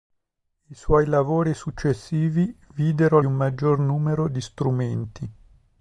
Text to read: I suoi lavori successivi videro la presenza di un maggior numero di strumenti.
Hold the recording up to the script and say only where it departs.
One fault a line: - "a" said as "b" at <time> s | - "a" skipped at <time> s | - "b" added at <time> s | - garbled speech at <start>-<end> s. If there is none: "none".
- "la presenza di" skipped at 3.2 s